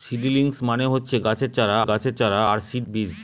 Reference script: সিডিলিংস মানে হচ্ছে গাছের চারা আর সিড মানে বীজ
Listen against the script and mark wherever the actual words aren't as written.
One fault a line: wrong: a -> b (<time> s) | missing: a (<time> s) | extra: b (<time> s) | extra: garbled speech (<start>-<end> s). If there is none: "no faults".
extra: গাছের চারা (1.8 s)
missing: মানে (2.8 s)